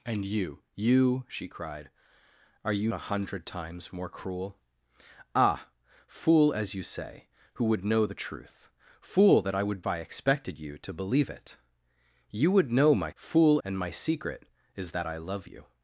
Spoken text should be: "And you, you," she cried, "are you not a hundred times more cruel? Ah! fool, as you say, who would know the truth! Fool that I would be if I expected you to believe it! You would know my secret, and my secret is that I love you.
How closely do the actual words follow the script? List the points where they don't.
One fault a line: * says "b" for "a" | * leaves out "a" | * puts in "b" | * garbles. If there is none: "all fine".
* leaves out "not"
* leaves out "be if"
* says "fool" for "secret"